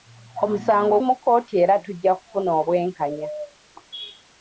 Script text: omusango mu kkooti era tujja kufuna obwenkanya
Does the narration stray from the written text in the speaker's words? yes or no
no